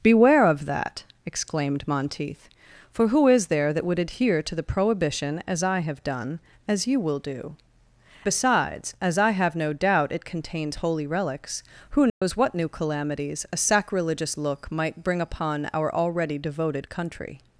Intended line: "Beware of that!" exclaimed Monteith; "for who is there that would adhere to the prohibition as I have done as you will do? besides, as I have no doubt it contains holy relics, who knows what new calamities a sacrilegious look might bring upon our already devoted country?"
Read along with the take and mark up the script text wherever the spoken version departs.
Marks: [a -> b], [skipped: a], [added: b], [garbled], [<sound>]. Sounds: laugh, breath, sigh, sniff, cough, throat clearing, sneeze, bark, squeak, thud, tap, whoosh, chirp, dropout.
"Beware of that!" exclaimed Monteith; "for who is there that would adhere to the prohibition as I have done as you will do? besides, as I have no doubt it contains holy relics, who knows [dropout] what new calamities a sacrilegious look might bring upon our already devoted country?"